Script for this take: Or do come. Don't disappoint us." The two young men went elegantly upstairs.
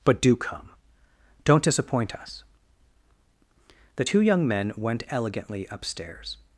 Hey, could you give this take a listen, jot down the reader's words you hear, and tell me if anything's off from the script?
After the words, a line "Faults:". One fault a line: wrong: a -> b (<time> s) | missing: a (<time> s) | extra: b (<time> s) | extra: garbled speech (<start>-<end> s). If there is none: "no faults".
But do come. Don't disappoint us." The two young men went elegantly upstairs.
Faults:
wrong: Or -> But (0.0 s)